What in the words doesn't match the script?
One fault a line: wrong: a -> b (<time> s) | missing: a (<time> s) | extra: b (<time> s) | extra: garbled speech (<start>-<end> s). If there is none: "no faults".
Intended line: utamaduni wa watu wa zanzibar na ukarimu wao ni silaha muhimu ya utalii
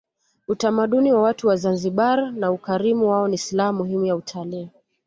no faults